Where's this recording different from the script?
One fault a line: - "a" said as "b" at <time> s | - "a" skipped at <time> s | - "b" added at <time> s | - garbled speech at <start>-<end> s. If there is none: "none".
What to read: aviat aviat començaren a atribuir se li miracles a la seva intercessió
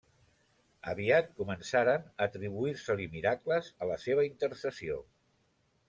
- "aviat" skipped at 1.3 s